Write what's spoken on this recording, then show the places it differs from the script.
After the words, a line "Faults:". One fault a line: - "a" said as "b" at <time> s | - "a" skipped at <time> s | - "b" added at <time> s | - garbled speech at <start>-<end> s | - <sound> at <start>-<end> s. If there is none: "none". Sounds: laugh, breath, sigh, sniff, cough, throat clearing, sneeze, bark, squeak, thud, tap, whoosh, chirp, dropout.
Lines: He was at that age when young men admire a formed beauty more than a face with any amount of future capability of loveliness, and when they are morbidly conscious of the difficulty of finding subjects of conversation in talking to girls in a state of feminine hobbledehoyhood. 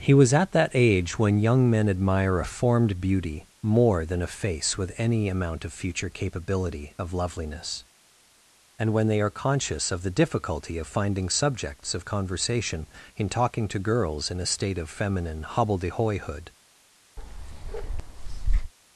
He was at that age when young men admire a formed beauty more than a face with any amount of future capability of loveliness, and when they are conscious of the difficulty of finding subjects of conversation in talking to girls in a state of feminine hobbledehoyhood.
Faults:
- "morbidly" skipped at 9.4 s
- bark at 17.2-18.7 s